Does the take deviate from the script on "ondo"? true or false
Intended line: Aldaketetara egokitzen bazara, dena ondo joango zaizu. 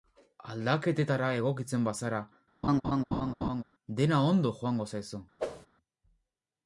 false